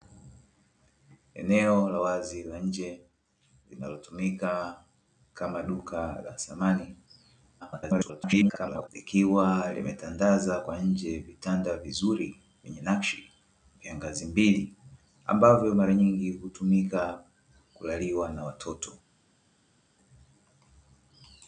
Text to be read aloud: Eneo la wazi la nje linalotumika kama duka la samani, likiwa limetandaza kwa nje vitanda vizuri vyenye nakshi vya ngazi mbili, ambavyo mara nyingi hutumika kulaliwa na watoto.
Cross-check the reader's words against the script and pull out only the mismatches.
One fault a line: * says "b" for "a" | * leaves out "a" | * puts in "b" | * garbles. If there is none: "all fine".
* garbles